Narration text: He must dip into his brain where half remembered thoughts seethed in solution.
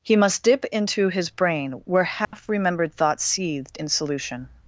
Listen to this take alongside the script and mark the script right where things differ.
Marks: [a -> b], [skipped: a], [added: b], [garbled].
He must dip into his brain where half remembered thoughts seethed in solution.